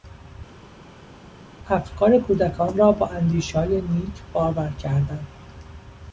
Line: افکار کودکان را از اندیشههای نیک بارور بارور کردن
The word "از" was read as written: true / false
false